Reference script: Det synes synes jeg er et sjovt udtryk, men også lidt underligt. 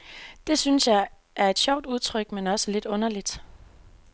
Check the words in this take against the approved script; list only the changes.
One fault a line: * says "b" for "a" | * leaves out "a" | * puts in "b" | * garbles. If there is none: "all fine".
* leaves out "synes"